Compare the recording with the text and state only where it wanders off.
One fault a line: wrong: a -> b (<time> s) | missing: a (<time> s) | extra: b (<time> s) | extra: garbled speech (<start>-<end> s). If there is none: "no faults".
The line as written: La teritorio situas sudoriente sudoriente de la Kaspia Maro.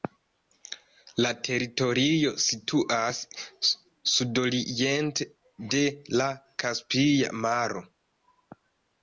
missing: sudoriente (5.3 s)